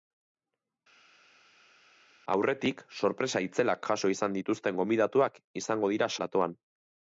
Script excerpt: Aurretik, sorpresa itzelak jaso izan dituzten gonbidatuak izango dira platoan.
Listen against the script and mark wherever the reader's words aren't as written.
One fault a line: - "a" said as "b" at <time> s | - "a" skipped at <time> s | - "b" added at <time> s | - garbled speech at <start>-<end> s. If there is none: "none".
none